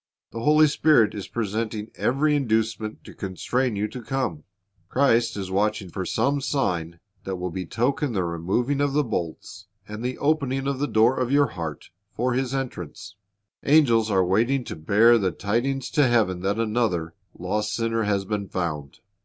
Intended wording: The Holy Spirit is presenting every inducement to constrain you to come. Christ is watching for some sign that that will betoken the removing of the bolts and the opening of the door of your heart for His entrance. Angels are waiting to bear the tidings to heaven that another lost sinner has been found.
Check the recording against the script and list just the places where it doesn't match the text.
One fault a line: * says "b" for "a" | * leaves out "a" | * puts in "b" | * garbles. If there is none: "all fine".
* leaves out "that"